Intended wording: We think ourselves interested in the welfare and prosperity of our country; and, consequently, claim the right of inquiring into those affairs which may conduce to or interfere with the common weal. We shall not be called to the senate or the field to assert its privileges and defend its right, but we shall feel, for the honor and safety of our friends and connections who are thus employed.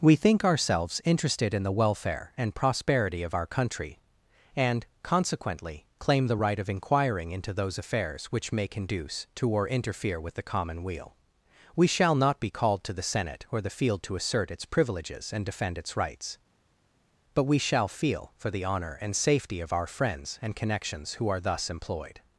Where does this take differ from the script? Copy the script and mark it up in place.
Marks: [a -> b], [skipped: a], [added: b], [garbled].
We think ourselves interested in the welfare and prosperity of our country; and, consequently, claim the right of inquiring into those affairs which may conduce to or interfere with the common weal. We shall not be called to the senate or the field to assert its privileges and defend its [right, -> rights] but we shall feel, for the honor and safety of our friends and connections who are thus employed.